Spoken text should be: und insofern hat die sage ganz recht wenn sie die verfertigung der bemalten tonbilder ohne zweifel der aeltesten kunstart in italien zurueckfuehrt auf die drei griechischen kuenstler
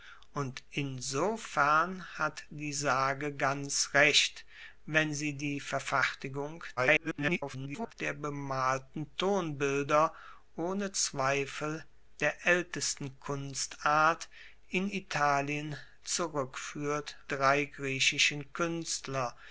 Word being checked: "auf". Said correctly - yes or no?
no